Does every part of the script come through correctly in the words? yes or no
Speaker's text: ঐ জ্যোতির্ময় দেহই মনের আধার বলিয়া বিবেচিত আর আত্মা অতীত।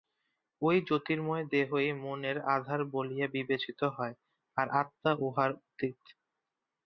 no